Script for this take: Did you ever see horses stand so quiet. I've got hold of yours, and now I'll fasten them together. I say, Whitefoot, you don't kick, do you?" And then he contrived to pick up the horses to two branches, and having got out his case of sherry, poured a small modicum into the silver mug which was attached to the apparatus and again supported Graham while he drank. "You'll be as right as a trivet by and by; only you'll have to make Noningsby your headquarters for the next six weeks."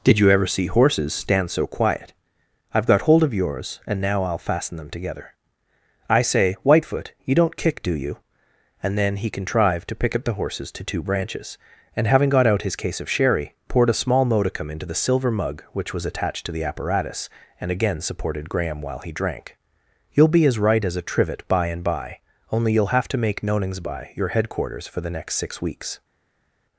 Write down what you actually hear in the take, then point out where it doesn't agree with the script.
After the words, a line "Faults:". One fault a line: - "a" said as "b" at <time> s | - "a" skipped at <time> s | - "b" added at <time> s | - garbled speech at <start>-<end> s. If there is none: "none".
Did you ever see horses stand so quiet. I've got hold of yours, and now I'll fasten them together. I say, Whitefoot, you don't kick, do you?" And then he contrived to pick up the horses to two branches, and having got out his case of sherry, poured a small modicum into the silver mug which was attached to the apparatus and again supported Graham while he drank. "You'll be as right as a trivet by and by; only you'll have to make Noningsby your headquarters for the next six weeks."
Faults:
none